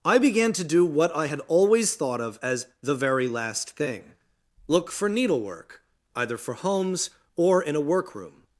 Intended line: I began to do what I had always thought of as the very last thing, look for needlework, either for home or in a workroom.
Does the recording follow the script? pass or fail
fail